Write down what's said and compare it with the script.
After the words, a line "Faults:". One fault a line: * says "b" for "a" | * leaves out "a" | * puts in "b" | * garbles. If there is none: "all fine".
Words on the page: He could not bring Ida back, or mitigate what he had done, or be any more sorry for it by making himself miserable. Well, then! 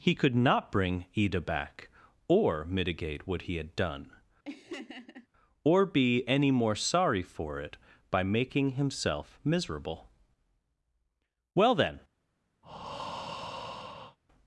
He could not bring Ida back, or mitigate what he had done, or be any more sorry for it by making himself miserable. Well, then!
Faults:
all fine